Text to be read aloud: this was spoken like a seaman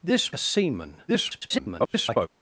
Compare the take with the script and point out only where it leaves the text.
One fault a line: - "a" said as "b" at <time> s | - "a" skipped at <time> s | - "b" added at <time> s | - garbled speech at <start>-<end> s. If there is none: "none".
- "was spoken like" skipped at 0.3 s
- garbled speech at 1.1-2.3 s